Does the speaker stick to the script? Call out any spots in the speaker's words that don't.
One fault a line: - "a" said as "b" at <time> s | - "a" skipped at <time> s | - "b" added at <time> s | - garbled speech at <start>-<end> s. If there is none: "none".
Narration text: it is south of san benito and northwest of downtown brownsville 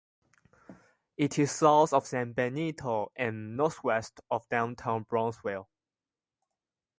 none